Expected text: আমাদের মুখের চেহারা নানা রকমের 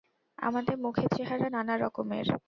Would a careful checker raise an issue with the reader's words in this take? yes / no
no